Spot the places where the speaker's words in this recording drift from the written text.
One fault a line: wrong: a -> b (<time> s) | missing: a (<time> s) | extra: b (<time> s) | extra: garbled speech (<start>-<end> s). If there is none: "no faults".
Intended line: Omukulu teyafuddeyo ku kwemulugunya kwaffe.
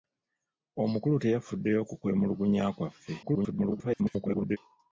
extra: garbled speech (3.2-4.6 s)